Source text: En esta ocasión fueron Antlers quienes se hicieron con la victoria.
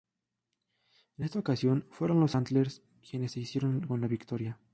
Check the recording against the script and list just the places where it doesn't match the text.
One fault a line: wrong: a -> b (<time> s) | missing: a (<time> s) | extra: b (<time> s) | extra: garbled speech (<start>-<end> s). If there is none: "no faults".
extra: los (2.2 s)